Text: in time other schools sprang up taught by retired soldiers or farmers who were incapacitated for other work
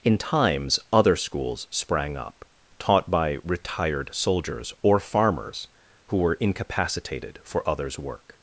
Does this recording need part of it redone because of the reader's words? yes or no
yes